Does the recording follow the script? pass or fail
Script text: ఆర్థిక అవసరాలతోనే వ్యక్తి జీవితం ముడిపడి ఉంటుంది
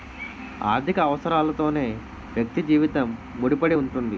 pass